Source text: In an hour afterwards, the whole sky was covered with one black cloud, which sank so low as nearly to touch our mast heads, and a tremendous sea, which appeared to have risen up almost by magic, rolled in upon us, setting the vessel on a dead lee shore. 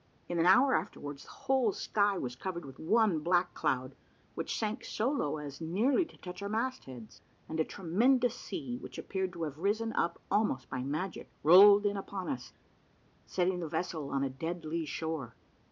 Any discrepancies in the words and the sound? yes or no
no